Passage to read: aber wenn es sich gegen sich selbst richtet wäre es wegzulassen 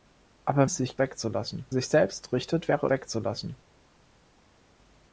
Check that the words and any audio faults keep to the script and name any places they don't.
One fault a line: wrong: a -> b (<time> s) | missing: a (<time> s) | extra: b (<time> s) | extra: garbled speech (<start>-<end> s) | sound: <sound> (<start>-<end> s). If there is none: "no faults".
missing: wenn (0.7 s)
wrong: gegen -> wegzulassen (1.0 s)
missing: es (2.9 s)